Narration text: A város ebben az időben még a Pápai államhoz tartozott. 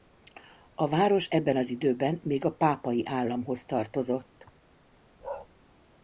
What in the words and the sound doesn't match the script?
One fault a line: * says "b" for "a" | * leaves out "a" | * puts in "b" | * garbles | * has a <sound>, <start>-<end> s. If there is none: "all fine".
* has a bark, 5.2-5.5 s